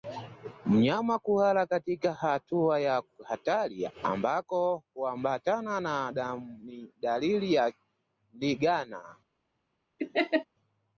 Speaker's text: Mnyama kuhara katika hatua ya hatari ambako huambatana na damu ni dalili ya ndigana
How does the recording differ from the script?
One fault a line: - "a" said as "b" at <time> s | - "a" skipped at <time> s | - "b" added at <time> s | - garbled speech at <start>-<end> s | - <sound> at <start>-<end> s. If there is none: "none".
- laugh at 10.0-10.5 s